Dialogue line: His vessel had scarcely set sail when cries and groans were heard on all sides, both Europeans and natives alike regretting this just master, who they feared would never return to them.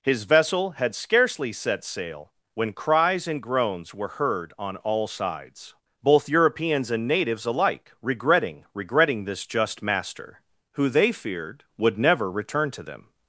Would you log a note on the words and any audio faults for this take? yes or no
yes